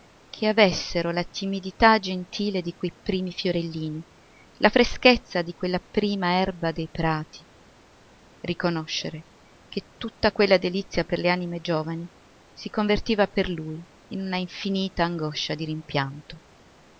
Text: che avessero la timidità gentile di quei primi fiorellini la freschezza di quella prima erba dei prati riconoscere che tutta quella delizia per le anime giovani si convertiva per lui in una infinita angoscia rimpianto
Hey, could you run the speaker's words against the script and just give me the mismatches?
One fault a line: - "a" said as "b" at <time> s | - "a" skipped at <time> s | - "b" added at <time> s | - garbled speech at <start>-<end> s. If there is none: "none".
- "di" added at 15.5 s